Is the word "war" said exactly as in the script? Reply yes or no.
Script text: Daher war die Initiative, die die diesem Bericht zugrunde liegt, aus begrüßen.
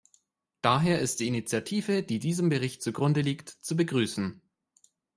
no